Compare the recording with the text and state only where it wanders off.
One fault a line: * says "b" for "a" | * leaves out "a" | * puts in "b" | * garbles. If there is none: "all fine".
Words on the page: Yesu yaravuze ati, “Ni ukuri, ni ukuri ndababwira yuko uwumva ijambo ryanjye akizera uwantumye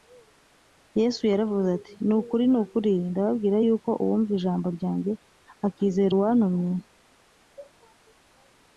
all fine